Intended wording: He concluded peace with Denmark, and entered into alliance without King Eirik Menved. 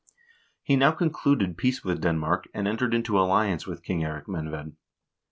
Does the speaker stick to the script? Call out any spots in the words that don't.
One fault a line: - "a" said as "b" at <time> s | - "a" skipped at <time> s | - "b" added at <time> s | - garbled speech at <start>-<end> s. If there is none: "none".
- "now" added at 0.8 s
- "without" said as "with" at 3.7 s